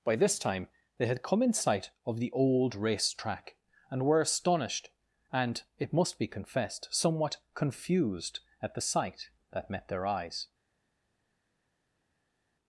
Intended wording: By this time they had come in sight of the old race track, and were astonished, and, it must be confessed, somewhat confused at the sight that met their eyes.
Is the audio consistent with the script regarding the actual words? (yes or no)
yes